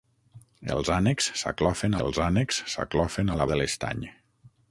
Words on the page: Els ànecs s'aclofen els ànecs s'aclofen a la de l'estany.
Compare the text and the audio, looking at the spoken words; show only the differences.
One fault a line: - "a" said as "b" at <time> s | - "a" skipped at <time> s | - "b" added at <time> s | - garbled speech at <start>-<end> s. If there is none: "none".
none